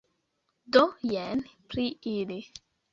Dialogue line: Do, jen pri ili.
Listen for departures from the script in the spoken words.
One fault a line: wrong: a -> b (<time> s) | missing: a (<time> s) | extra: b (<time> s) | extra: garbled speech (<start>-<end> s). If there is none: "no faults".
no faults